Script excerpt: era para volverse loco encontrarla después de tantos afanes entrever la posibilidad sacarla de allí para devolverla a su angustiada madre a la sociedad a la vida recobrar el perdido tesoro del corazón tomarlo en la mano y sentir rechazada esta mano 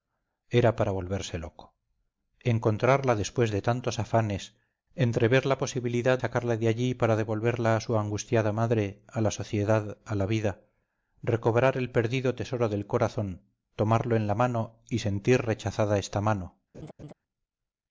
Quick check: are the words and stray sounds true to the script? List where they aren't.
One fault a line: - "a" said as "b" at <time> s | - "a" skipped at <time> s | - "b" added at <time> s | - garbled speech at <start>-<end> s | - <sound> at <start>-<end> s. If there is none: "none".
- laugh at 16.7-17.1 s